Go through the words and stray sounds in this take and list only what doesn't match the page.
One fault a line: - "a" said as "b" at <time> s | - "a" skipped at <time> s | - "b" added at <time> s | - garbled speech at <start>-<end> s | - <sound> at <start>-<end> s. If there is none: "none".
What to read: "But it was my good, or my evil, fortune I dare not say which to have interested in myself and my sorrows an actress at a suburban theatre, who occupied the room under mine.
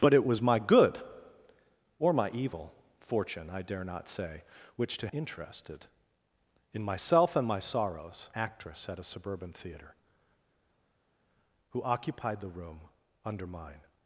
- "have" skipped at 5.1 s
- "an" skipped at 8.3 s